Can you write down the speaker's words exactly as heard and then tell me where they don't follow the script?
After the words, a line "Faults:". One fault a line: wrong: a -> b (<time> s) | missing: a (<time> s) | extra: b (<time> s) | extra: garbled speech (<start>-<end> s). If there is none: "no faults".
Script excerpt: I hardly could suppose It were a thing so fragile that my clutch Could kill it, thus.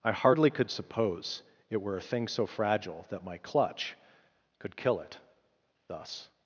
I hardly could suppose It were a thing so fragile that my clutch Could kill it, thus.
Faults:
no faults